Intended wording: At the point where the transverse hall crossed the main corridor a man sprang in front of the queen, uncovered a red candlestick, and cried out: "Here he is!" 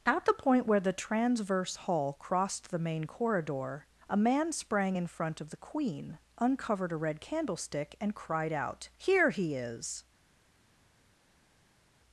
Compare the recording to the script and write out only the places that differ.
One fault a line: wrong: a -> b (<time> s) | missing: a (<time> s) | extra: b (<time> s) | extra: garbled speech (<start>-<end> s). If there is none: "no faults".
no faults